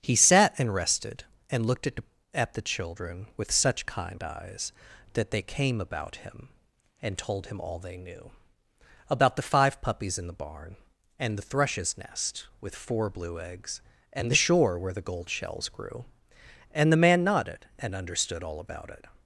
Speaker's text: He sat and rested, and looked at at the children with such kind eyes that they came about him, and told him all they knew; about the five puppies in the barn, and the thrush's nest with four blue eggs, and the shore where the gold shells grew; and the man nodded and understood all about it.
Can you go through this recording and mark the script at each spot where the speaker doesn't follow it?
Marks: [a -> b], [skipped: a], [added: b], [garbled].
He sat and rested, and looked at at the children with such kind eyes that they came about him, and told him all they knew; about the five puppies in the barn, and the thrush's nest with four blue eggs, and the shore where the gold shells grew; and the man nodded and understood all about it.